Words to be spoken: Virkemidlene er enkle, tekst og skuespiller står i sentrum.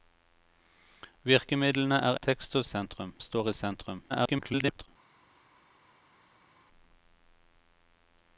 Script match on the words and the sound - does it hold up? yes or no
no